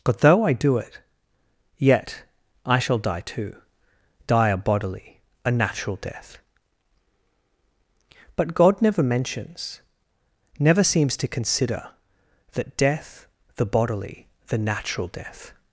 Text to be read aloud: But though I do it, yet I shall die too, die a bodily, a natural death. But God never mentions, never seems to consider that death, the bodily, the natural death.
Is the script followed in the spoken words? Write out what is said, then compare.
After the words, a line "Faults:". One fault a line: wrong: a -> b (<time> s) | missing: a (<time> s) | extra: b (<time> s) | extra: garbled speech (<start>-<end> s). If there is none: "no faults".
But though I do it, yet I shall die too, die a bodily, a natural death. But God never mentions, never seems to consider that death, the bodily, the natural death.
Faults:
no faults